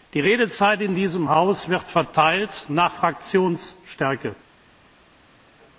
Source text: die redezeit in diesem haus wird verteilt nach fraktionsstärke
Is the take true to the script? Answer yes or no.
yes